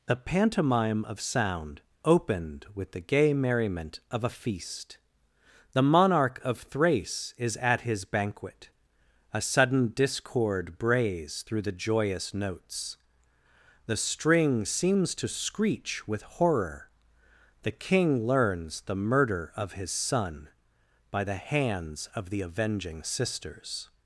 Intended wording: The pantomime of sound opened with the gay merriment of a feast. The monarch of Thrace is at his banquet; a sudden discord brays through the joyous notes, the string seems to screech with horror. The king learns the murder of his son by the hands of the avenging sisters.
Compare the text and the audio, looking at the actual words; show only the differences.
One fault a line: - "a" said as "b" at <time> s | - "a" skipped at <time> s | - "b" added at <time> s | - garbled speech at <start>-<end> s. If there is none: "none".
none